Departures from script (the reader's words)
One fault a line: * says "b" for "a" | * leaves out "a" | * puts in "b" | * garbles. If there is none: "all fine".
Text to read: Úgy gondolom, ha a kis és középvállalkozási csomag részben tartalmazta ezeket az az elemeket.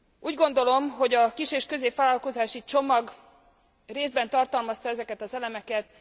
* says "hogy" for "ha"
* leaves out "az"